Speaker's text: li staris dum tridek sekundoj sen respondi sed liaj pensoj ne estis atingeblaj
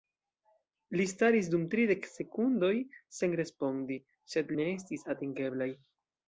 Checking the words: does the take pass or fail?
fail